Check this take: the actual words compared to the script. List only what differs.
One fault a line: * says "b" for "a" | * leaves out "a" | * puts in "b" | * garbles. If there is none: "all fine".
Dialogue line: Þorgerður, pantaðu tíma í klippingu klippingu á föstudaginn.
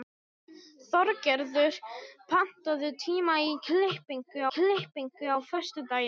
all fine